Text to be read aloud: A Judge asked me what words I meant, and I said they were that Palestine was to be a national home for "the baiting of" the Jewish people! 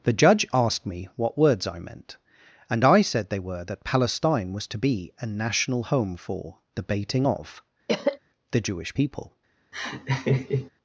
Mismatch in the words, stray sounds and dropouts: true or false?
true